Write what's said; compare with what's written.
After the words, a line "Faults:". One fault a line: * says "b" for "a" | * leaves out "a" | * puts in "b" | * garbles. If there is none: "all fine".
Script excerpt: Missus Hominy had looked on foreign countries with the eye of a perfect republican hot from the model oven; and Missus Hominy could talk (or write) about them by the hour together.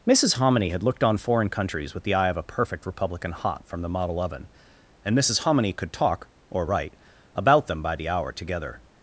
Missus Hominy had looked on foreign countries with the eye of a perfect republican hot from the model oven; and Missus Hominy could talk (or write) about them by the hour together.
Faults:
all fine